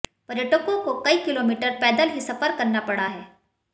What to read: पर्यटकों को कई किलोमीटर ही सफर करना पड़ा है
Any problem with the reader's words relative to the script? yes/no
yes